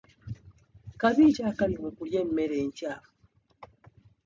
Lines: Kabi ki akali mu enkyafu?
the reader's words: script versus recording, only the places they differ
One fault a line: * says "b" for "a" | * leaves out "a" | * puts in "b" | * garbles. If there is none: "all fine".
* puts in "kulya emmere"